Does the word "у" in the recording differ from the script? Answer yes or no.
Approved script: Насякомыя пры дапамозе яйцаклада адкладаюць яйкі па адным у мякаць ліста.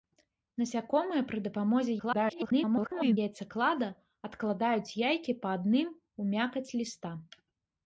no